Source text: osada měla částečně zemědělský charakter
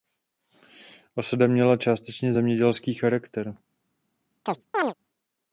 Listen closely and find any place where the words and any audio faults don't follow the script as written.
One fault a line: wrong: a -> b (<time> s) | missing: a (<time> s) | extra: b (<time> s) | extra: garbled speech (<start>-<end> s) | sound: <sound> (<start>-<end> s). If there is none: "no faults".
sound: chirp (4.5-4.9 s)